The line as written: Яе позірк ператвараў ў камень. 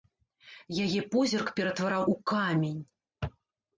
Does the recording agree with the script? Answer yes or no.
yes